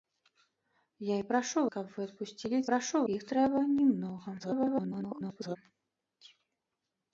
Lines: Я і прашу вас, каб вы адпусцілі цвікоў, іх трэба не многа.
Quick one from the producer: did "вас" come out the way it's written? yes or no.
no